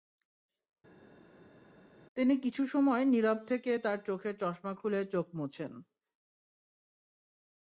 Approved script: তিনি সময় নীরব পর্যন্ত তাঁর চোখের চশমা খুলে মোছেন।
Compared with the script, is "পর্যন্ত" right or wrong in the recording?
wrong